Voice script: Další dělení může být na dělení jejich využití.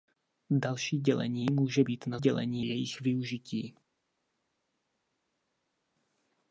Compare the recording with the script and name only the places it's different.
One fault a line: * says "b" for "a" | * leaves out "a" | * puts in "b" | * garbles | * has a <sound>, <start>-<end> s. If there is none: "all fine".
all fine